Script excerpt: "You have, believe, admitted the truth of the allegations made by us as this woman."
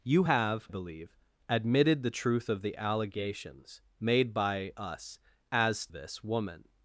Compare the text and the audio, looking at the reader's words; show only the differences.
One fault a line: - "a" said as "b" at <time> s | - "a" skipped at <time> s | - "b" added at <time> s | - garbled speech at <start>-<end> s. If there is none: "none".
none